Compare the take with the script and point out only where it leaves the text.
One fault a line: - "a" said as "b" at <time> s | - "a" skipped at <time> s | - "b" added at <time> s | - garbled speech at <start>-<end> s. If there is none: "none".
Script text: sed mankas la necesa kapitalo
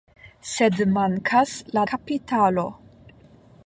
- "necesa" skipped at 1.9 s